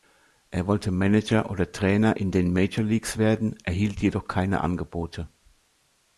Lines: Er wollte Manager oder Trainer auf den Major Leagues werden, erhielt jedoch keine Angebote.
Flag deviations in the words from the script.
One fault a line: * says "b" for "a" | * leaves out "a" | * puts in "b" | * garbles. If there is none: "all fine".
* says "in" for "auf"